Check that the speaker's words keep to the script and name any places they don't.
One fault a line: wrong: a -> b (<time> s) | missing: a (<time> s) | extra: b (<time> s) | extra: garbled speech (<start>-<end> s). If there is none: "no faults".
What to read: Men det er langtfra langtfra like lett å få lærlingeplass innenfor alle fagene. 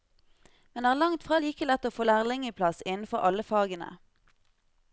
missing: langtfra (1.4 s)